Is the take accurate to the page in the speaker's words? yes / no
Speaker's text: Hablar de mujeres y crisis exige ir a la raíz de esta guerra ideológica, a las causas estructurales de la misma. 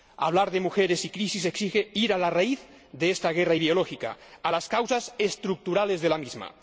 yes